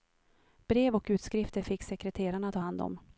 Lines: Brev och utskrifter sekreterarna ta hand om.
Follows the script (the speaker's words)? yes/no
no